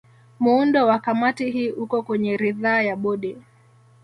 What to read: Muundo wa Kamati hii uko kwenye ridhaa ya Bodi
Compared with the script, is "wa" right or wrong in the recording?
right